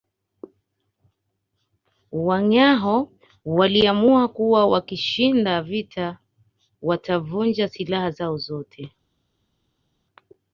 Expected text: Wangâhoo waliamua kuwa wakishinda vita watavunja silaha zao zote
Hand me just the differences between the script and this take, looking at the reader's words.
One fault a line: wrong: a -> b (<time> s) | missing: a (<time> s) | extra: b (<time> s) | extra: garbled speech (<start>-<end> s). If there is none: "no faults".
no faults